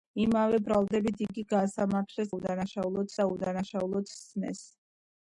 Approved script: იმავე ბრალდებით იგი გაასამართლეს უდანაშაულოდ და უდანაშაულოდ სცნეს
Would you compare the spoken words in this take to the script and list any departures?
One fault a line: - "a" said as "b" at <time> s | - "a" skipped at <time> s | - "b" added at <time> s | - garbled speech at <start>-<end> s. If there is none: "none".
none